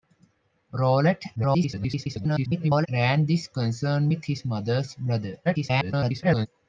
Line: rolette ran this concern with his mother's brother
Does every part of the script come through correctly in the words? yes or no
no